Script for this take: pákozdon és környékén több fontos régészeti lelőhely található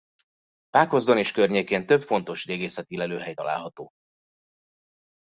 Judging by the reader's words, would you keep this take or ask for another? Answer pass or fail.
pass